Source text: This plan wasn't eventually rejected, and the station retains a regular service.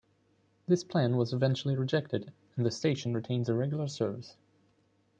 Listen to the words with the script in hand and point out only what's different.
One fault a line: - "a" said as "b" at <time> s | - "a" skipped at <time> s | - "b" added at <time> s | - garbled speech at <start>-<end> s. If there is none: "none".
- "wasn't" said as "was" at 1.1 s